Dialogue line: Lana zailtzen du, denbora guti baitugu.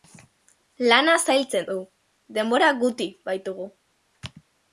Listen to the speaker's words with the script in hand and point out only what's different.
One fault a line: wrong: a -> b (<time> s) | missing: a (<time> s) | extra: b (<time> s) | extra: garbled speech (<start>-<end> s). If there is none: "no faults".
no faults